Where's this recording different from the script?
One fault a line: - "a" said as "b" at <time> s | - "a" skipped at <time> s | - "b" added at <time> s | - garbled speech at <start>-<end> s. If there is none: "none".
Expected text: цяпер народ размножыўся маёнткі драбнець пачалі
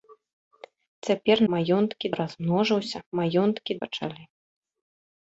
- "народ" said as "маёнткі" at 1.5 s
- "драбнець" skipped at 3.7 s